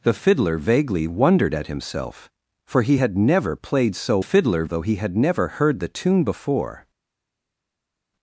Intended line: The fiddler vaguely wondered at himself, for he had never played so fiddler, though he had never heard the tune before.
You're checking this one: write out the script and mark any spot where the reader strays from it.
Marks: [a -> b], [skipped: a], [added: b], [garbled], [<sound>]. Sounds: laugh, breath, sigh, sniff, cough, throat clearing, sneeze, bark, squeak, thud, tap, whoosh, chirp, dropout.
The fiddler vaguely wondered at himself, for he had never played so fiddler, though he had never heard the tune before.